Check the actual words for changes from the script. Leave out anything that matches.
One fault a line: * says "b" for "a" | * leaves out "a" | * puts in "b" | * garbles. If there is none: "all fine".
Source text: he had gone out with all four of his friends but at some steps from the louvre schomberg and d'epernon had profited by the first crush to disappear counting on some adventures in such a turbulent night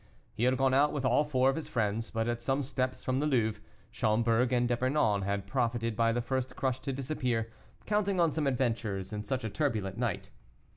all fine